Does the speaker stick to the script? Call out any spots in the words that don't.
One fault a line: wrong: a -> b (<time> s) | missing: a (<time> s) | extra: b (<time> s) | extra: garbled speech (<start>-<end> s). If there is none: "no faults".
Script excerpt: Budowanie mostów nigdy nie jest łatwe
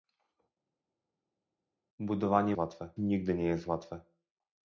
wrong: mostów -> łatwe (2.5 s)